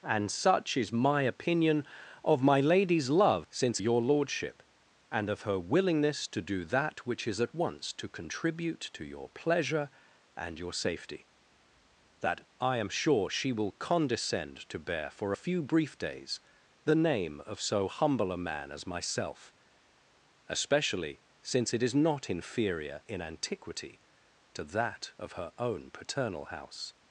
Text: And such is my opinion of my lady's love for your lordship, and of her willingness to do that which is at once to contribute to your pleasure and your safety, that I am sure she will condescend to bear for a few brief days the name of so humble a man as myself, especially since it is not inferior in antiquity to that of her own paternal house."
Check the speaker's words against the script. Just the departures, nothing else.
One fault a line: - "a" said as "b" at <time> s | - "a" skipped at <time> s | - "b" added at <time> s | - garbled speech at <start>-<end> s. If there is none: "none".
- "for" said as "since" at 3.5 s